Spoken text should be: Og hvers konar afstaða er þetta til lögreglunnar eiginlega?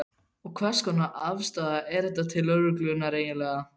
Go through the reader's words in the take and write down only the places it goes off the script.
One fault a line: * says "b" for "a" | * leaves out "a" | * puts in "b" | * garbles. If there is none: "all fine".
all fine